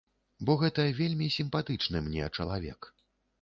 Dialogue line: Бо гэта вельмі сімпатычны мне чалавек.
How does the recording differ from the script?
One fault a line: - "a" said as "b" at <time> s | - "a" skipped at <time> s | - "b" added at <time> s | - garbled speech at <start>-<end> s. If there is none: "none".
none